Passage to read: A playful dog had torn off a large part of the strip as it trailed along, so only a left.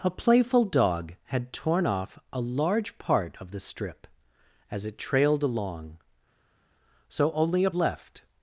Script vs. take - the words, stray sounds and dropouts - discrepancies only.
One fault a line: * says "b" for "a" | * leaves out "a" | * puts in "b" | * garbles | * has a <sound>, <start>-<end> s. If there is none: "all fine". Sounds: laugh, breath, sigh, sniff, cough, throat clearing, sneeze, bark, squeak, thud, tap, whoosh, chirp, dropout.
all fine